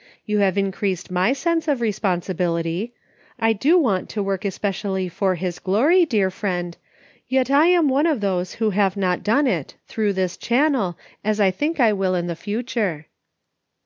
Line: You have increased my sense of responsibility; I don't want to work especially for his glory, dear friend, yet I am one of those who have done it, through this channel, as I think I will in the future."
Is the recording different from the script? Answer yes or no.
yes